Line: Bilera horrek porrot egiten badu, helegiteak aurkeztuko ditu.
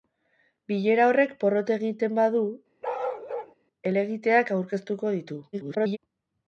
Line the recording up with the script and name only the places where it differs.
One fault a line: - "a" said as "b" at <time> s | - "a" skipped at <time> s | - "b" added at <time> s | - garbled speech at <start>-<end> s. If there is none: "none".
- garbled speech at 5.5-6.0 s